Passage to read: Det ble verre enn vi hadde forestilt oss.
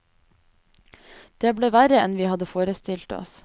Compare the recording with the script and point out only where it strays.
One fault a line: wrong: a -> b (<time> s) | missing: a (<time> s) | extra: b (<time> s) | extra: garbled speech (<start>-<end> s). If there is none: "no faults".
no faults